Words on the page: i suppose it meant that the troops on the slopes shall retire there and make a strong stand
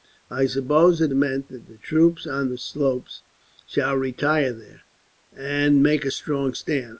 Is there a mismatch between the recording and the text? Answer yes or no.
no